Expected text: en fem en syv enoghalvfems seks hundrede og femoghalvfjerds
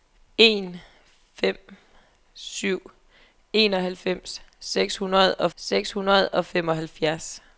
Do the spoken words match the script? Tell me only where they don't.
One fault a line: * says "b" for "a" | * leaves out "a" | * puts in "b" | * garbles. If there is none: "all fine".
* leaves out "en"
* puts in "seks hundrede og"